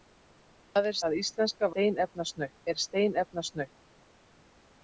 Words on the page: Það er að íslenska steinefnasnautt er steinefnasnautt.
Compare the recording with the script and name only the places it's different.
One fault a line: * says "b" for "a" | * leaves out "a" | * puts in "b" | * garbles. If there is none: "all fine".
all fine